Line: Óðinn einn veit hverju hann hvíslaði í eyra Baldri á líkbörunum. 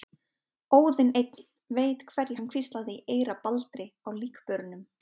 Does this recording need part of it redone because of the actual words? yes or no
no